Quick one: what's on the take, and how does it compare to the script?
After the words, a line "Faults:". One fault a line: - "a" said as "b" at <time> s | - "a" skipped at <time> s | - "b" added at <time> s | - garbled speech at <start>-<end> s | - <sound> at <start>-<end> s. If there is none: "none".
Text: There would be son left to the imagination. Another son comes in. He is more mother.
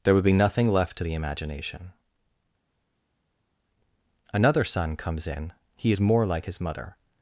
There would be nothing left to the imagination. Another son comes in. He is more like his mother.
Faults:
- "son" said as "nothing" at 0.3 s
- "like his" added at 6.3 s